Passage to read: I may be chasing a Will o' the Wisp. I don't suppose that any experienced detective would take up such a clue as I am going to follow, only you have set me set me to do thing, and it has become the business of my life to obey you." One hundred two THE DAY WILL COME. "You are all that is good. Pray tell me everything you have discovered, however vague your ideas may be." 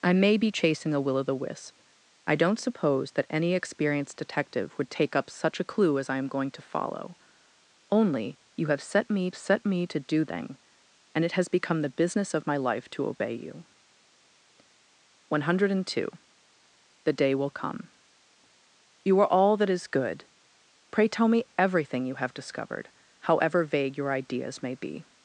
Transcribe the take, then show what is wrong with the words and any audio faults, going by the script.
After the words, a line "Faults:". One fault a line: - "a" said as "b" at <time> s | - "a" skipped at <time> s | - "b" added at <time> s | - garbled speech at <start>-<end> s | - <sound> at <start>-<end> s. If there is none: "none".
I may be chasing a Will o' the Wisp. I don't suppose that any experienced detective would take up such a clue as I am going to follow, only you have set me set me to do thing, and it has become the business of my life to obey you." One hundred two THE DAY WILL COME. "You are all that is good. Pray tell me everything you have discovered, however vague your ideas may be."
Faults:
none